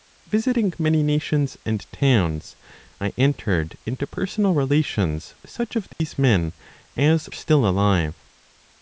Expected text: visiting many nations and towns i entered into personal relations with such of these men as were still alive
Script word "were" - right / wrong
wrong